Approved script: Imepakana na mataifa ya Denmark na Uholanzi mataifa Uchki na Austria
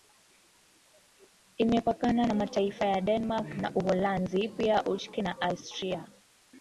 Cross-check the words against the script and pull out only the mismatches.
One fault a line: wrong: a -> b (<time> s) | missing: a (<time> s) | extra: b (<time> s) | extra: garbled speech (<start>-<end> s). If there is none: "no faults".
wrong: mataifa -> pia (4.5 s)